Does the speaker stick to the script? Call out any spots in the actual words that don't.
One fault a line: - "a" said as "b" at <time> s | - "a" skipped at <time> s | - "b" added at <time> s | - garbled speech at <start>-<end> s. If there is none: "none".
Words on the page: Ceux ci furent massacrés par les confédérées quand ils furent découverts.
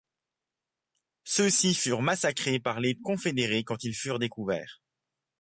none